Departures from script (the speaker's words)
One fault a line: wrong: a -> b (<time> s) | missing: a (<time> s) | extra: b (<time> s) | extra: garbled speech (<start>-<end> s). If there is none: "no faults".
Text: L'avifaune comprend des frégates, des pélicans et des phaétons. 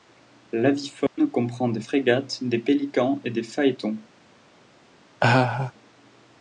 no faults